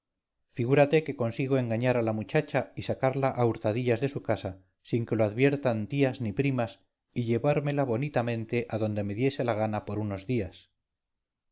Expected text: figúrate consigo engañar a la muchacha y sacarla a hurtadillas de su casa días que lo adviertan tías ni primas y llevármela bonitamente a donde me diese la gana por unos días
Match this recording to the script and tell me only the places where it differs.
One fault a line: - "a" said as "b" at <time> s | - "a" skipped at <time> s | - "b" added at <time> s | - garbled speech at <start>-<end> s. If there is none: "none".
- "que" added at 1.1 s
- "días" said as "sin" at 4.8 s